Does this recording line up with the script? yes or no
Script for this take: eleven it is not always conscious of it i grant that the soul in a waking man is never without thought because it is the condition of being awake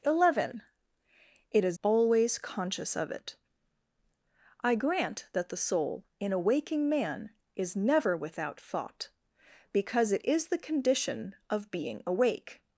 no